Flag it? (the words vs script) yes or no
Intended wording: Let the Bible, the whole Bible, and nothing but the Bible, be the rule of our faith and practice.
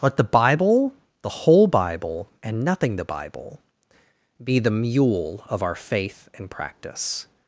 yes